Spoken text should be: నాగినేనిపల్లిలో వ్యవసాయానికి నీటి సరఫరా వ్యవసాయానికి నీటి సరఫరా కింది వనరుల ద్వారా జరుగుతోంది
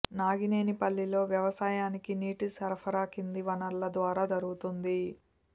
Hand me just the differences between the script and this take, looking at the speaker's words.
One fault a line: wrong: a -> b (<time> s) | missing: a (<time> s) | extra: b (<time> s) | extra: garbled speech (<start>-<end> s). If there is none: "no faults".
missing: వ్యవసాయానికి నీటి సరఫరా (3.0 s)